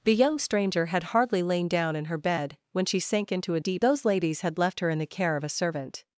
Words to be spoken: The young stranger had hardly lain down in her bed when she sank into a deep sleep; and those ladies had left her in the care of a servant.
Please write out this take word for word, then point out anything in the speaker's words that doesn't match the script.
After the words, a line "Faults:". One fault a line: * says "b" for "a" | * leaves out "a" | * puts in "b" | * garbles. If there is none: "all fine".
The young stranger had hardly lain down in her bed when she sank into a deep those ladies had left her in the care of a servant.
Faults:
* leaves out "sleep and"